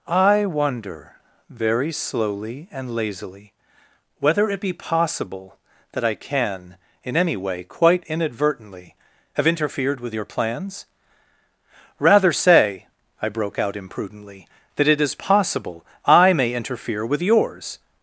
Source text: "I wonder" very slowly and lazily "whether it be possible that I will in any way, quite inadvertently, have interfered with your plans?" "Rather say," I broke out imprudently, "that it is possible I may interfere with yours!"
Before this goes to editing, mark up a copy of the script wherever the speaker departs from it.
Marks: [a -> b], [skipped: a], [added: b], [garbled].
"I wonder" very slowly and lazily "whether it be possible that I [will -> can] in any way, quite inadvertently, have interfered with your plans?" "Rather say," I broke out imprudently, "that it is possible I may interfere with yours!"